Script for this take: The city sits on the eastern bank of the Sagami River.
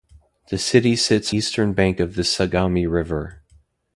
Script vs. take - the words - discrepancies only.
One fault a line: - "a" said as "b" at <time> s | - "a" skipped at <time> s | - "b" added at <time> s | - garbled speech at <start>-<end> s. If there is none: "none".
- "on the" skipped at 1.3 s